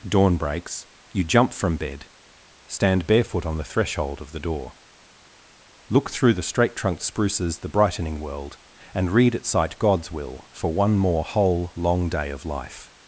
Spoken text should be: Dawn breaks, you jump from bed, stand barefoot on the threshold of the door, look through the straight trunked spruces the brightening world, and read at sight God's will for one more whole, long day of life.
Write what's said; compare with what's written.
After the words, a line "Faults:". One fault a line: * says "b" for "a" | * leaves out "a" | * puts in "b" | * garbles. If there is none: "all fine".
Dawn breaks, you jump from bed, stand barefoot on the threshold of the door, look through the straight trunked spruces the brightening world, and read at sight God's will for one more whole, long day of life.
Faults:
all fine